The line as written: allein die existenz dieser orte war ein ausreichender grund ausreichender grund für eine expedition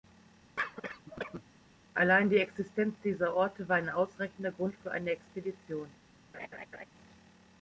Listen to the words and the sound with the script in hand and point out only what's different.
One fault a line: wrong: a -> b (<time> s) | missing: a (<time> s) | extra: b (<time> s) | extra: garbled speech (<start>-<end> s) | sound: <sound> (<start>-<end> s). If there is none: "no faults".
sound: cough (0.6-1.4 s)
missing: ausreichender grund (4.7 s)
sound: laugh (6.3-6.9 s)